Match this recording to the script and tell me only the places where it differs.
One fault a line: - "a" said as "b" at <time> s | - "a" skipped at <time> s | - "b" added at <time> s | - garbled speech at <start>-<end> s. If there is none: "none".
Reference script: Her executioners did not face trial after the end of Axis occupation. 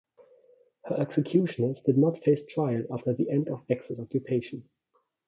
none